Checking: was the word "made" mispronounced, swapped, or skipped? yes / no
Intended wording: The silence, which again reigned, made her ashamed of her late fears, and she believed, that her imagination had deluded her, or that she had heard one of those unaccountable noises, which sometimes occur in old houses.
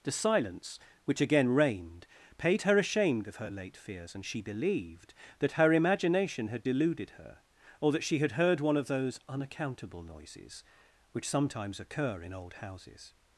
yes